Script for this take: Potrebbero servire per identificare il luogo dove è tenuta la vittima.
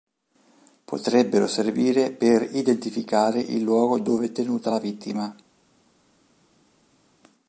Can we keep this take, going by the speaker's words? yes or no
yes